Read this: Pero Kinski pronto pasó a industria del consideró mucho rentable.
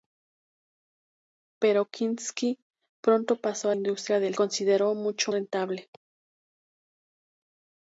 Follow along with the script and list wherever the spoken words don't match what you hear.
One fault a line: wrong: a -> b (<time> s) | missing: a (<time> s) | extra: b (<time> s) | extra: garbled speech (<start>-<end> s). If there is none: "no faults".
no faults